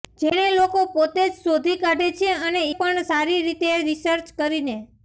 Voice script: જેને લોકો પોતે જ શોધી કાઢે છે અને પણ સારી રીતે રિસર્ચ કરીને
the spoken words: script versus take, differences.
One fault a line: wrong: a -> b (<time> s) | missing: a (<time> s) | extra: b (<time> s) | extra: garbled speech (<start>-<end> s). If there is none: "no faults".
no faults